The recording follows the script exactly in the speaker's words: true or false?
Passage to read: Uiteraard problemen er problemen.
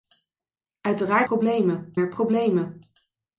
true